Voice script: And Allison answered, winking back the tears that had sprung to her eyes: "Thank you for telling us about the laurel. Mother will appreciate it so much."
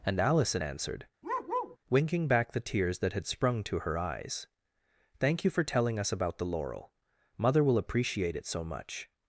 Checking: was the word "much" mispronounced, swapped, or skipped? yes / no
no